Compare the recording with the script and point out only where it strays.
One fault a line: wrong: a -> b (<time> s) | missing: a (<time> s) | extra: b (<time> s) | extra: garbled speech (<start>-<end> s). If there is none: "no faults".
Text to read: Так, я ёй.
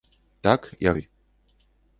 no faults